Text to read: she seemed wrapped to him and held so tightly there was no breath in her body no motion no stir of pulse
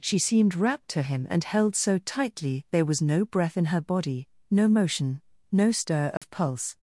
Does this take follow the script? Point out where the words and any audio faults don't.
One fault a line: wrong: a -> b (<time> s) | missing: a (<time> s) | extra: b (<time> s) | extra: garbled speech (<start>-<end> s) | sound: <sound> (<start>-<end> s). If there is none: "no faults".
sound: dropout (6.2-6.2 s)